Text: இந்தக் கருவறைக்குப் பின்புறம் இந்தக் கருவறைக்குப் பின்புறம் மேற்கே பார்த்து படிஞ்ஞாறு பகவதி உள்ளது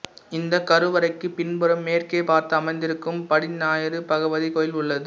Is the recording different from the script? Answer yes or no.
yes